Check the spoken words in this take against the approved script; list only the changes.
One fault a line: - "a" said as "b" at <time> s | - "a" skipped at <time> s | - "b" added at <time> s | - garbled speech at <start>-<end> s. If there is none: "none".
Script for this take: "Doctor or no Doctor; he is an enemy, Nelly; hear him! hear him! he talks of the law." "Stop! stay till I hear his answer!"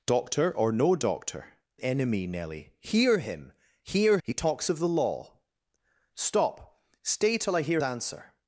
- "he is an" skipped at 1.6 s
- "him" skipped at 4.2 s
- "his" skipped at 7.8 s